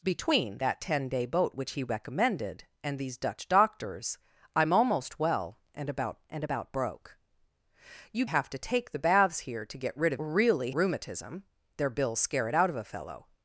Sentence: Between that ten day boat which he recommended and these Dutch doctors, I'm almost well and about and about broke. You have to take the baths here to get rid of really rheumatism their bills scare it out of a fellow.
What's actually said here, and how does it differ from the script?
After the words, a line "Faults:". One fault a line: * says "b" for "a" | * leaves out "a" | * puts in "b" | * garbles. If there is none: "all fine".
Between that ten day boat which he recommended and these Dutch doctors, I'm almost well and about and about broke. You have to take the baths here to get rid of really rheumatism their bills scare it out of a fellow.
Faults:
all fine